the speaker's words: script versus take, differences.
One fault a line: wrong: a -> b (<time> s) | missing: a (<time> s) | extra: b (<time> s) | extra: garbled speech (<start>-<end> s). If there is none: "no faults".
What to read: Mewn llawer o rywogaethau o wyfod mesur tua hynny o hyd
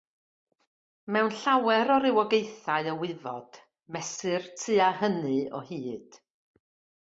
no faults